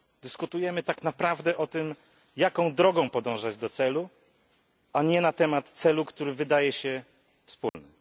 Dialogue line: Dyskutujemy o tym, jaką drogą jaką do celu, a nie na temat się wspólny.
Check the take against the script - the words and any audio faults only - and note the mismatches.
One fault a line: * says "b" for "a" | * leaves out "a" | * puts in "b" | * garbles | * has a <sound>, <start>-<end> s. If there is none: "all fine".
* puts in "tak naprawdę"
* says "podążać" for "jaką"
* puts in "celu który wydaje"
* has a dropout, 7.7-7.7 s